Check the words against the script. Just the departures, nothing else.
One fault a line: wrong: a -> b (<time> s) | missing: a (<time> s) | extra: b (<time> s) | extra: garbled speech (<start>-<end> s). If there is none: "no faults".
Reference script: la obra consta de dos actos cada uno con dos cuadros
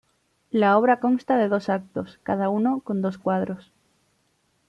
no faults